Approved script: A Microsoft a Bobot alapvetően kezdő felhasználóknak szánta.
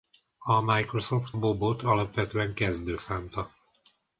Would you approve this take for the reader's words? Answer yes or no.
no